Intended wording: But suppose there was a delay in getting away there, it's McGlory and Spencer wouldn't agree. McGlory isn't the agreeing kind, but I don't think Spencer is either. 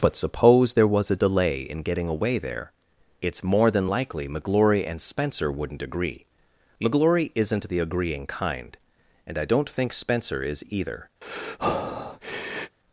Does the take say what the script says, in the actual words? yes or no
no